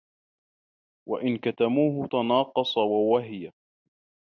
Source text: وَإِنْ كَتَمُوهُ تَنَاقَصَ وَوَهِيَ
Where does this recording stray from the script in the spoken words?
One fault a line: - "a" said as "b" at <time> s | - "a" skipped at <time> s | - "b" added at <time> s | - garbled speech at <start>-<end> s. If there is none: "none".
none